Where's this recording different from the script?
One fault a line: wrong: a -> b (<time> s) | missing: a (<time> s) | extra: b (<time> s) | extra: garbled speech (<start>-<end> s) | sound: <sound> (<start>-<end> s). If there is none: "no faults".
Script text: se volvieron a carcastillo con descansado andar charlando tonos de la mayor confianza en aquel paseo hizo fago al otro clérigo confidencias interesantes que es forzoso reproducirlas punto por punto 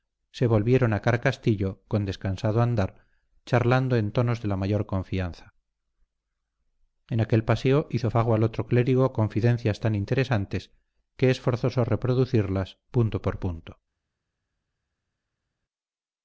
extra: en (4.0 s)
extra: tan (9.8 s)